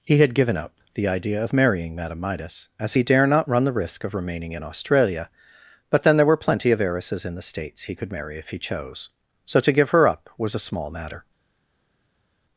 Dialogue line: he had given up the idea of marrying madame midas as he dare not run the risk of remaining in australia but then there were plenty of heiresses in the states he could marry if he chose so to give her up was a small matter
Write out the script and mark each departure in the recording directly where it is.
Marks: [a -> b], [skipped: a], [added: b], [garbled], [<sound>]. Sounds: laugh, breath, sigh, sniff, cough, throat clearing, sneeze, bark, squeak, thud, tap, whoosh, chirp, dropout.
he had given up the idea of marrying madame midas as he dare not run the risk of remaining in australia but then there were plenty of heiresses in the states he could marry if he chose so to give her up was a small matter